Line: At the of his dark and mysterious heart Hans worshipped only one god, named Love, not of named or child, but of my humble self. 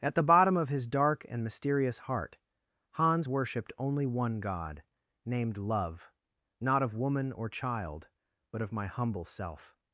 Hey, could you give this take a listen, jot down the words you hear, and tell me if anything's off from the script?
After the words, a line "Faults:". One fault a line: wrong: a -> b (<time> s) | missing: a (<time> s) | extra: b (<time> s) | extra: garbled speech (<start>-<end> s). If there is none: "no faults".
At the bottom of his dark and mysterious heart Hans worshipped only one god, named Love, not of woman or child, but of my humble self.
Faults:
extra: bottom (0.2 s)
wrong: named -> woman (7.0 s)